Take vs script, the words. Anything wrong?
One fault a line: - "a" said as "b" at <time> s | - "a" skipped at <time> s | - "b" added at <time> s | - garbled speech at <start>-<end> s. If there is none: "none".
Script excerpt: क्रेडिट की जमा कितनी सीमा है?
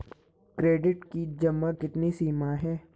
none